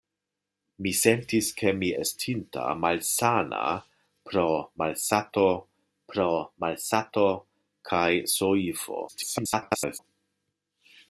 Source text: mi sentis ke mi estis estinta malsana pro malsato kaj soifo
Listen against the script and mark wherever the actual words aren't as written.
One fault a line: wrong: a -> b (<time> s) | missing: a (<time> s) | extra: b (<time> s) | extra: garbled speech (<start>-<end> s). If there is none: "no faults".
missing: estis (1.9 s)
extra: pro malsato (6.1 s)
extra: garbled speech (9.1-10.0 s)